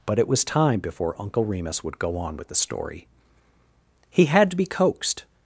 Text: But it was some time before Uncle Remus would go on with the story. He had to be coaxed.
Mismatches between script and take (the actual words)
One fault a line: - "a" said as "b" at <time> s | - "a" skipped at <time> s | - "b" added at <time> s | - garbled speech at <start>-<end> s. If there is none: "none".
- "some" skipped at 0.4 s